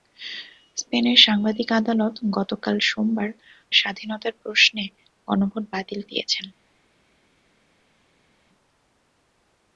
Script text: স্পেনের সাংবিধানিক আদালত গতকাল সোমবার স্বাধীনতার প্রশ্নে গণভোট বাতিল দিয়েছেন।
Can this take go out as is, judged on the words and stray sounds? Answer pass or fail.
pass